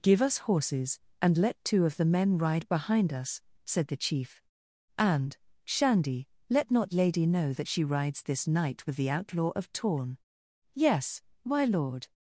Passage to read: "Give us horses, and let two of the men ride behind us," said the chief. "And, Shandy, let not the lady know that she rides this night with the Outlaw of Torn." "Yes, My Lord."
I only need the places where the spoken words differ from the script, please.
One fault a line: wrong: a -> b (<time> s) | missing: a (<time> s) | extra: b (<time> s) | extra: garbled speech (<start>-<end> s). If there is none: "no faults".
missing: the (6.9 s)